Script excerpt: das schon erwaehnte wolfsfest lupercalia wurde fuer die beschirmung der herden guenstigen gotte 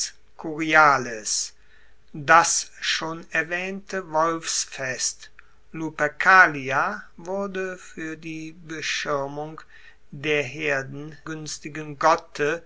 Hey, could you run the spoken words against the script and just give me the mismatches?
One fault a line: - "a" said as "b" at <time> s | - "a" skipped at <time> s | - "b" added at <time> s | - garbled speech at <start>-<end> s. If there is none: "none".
none